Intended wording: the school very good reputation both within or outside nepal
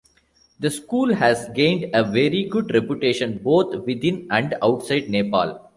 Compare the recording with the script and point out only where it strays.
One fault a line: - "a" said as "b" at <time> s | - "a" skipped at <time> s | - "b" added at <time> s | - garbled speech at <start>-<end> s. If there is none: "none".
- "has gained a" added at 1.1 s
- "or" said as "and" at 4.3 s